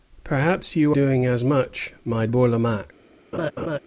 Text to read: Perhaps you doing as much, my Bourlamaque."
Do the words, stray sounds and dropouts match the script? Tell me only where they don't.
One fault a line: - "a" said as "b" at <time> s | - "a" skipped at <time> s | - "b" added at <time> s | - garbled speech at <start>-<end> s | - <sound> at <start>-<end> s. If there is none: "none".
- laugh at 3.3-3.8 s